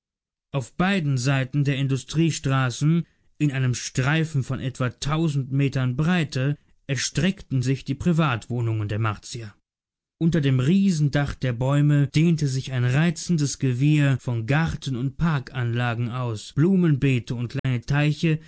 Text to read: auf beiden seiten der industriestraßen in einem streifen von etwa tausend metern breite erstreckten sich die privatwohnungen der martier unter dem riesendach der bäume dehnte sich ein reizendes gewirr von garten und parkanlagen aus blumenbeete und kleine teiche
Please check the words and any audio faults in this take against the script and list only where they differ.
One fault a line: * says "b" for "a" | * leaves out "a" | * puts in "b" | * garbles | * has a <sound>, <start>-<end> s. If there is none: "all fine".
* has a dropout, 17.6-17.6 s